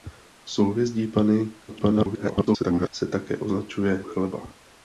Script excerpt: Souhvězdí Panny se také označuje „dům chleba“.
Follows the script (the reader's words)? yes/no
no